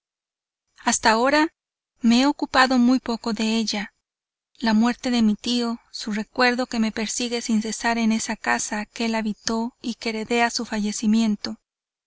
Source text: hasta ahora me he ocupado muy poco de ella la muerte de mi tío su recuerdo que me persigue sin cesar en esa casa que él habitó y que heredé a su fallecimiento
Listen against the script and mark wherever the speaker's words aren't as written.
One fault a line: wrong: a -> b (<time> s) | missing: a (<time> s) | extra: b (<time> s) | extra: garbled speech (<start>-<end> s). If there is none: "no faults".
no faults